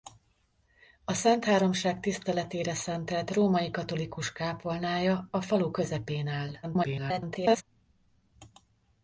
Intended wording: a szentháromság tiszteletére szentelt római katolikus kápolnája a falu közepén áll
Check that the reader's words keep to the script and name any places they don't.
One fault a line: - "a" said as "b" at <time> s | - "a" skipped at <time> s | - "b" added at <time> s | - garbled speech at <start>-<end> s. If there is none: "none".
- garbled speech at 6.6-7.6 s